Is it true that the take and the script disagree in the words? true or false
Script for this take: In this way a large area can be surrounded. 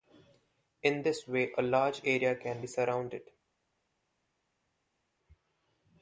false